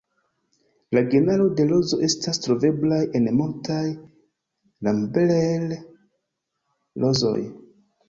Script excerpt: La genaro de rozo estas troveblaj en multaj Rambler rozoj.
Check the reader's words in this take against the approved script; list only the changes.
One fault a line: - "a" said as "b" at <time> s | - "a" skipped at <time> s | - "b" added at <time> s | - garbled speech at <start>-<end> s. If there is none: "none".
none